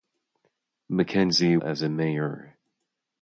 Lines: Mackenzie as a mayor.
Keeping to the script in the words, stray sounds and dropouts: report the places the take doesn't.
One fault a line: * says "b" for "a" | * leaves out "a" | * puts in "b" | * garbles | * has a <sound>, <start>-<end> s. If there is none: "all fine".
all fine